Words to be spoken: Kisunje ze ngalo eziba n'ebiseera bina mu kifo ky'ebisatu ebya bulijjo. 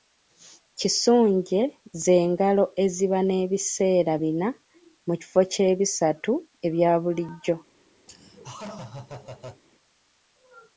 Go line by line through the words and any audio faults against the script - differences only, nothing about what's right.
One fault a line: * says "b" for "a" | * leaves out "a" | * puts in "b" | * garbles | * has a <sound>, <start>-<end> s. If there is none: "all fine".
* has a laugh, 8.1-9.6 s